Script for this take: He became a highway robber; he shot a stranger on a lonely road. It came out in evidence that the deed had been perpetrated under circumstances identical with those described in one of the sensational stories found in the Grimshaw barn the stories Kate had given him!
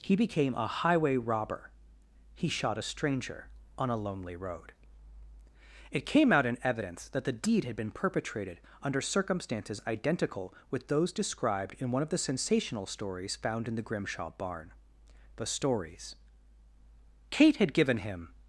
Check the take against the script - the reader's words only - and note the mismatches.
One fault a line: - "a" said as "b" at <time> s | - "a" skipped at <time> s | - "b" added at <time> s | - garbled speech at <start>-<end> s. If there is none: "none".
none